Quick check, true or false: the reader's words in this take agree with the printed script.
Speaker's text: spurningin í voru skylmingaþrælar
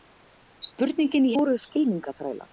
true